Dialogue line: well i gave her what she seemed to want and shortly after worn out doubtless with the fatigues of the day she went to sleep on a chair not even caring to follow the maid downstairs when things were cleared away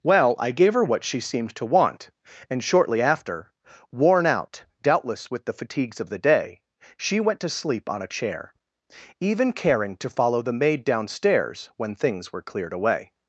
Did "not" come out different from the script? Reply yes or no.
yes